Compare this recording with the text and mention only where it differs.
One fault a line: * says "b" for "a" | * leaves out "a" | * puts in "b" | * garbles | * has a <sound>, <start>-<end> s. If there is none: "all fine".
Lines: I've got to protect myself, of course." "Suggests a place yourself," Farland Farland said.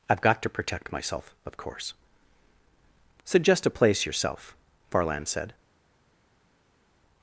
* says "Suggest" for "Suggests"
* leaves out "Farland"